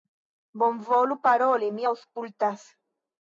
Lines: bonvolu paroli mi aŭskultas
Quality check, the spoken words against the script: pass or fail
pass